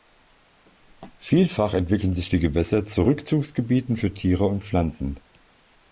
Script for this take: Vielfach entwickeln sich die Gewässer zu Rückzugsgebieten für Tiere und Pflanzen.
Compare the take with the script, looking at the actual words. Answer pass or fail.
pass